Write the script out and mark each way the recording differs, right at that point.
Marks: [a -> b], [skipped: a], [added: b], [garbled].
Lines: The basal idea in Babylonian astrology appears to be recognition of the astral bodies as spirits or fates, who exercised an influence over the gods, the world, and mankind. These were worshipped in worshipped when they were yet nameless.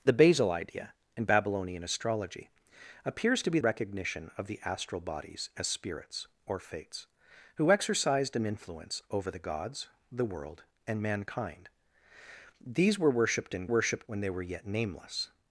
The basal idea in Babylonian astrology appears to be recognition of the astral bodies as spirits or fates, who exercised an influence over the gods, the world, and mankind. These were worshipped in worshipped when they were yet nameless.